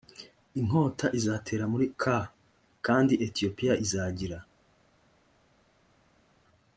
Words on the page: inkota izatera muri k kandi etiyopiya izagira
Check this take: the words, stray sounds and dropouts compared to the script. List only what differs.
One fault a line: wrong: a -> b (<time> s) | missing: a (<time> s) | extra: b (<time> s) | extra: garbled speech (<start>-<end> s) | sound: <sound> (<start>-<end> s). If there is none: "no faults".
no faults